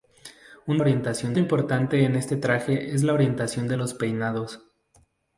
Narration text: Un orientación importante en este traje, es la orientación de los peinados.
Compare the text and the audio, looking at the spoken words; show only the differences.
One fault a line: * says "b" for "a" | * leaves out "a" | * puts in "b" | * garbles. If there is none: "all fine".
all fine